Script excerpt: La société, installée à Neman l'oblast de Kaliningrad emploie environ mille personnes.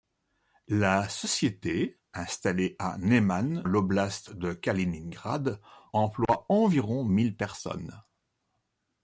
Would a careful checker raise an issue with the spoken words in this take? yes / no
no